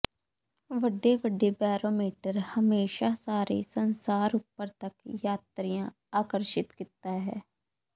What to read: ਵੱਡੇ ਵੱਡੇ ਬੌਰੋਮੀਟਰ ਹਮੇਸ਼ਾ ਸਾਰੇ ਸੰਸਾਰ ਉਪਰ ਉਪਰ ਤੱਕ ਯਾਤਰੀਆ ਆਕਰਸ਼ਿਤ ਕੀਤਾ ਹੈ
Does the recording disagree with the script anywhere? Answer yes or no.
yes